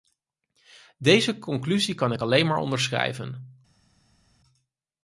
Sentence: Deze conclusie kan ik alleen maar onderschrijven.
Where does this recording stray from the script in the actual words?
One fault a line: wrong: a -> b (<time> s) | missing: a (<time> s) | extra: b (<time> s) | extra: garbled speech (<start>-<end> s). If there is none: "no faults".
no faults